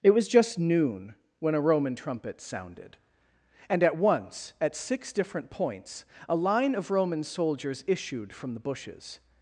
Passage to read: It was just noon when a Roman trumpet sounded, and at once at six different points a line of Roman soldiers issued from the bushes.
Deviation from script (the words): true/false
false